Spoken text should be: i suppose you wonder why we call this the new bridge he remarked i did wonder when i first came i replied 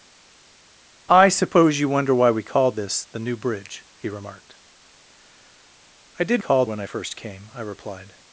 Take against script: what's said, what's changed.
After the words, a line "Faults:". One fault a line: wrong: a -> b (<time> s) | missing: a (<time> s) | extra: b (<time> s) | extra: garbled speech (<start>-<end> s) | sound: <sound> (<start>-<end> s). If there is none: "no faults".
i suppose you wonder why we call this the new bridge he remarked i did call when i first came i replied
Faults:
wrong: wonder -> call (6.4 s)